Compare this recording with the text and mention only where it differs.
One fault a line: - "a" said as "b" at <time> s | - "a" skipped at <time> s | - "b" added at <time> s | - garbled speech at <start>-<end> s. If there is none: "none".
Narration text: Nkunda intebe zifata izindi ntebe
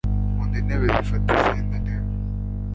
none